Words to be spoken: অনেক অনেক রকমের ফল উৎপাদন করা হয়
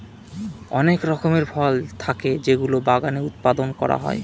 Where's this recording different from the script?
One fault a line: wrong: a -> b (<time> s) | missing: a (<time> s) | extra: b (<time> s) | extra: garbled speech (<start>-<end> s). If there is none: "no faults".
missing: অনেক (1.0 s)
extra: থাকে যেগুলো বাগানে (2.0 s)